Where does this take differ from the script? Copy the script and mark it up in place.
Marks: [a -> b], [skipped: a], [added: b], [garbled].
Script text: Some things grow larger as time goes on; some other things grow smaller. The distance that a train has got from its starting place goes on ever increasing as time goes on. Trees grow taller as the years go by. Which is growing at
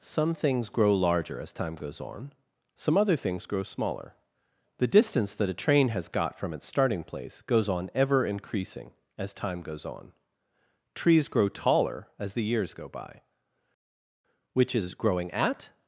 Some things grow larger as time goes on; some other things grow smaller. The distance that a train has got from its starting place goes on ever increasing as time goes on. Trees grow taller as the years go by. Which is growing at